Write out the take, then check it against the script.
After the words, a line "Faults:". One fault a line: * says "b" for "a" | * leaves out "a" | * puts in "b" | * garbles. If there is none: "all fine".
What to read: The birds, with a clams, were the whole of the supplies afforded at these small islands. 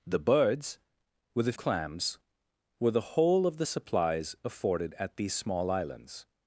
The birds, with a clams, were the whole of the supplies afforded at these small islands.
Faults:
all fine